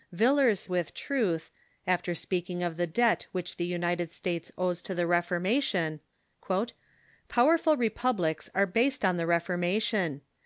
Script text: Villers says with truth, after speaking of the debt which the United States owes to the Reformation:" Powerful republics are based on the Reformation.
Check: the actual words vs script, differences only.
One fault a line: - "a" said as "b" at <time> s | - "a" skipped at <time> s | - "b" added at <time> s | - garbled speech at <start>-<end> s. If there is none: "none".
- "says" skipped at 0.6 s